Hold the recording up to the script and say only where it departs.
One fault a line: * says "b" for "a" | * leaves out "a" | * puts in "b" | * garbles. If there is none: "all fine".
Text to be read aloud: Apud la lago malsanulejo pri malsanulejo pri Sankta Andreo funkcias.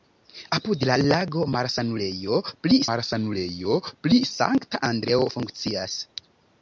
all fine